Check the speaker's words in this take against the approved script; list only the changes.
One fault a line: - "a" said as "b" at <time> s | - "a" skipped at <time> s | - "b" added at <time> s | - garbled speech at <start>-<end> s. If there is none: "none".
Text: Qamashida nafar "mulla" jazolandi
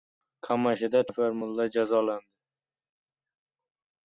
none